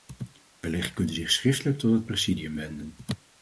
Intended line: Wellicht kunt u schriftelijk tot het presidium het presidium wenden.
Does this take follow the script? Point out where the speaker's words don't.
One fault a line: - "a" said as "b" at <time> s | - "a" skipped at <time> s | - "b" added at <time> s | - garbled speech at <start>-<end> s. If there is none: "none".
- "zich" added at 1.1 s
- "het presidium" skipped at 2.6 s